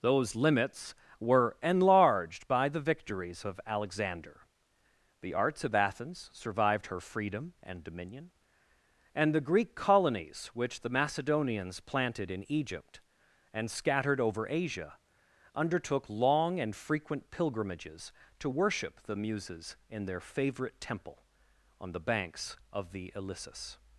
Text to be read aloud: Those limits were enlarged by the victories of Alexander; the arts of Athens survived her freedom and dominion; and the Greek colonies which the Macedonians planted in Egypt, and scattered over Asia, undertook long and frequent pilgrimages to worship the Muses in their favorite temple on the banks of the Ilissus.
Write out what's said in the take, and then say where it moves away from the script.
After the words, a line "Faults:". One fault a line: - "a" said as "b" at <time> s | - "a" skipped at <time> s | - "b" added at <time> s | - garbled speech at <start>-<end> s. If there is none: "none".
Those limits were enlarged by the victories of Alexander; the arts of Athens survived her freedom and dominion; and the Greek colonies which the Macedonians planted in Egypt, and scattered over Asia, undertook long and frequent pilgrimages to worship the Muses in their favorite temple on the banks of the Ilissus.
Faults:
none